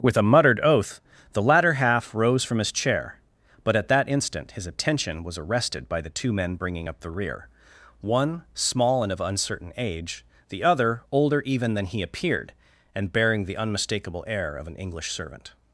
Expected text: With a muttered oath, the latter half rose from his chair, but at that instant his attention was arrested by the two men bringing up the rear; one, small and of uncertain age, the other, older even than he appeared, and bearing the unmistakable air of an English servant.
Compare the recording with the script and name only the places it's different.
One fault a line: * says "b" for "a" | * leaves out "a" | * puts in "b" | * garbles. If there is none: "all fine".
all fine